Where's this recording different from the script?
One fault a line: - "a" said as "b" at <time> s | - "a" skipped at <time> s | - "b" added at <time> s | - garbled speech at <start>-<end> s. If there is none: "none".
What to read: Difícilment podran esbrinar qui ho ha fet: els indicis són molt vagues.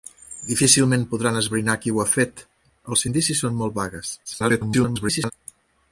- garbled speech at 4.2-5.3 s